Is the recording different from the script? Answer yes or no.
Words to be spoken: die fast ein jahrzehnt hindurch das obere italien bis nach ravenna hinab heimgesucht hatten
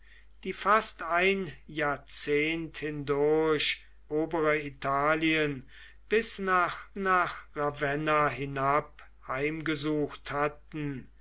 yes